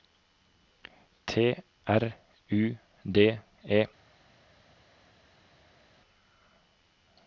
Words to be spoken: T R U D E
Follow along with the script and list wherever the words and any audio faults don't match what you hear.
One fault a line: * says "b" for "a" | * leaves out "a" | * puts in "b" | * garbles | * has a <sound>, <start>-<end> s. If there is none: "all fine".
all fine